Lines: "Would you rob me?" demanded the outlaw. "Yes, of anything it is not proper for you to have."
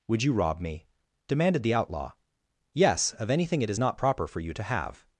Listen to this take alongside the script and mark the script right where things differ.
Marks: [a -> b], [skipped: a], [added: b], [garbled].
"Would you rob me?" demanded the outlaw. "Yes, of anything it is not proper for you to have."